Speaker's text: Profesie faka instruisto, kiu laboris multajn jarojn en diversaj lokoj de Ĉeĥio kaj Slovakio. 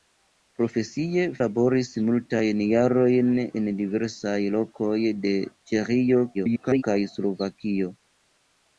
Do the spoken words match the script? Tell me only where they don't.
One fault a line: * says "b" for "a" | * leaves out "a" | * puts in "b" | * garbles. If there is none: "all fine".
* leaves out "faka instruisto kiu"
* garbles